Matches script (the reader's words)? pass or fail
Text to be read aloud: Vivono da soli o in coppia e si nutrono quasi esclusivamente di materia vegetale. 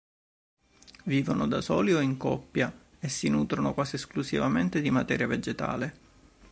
pass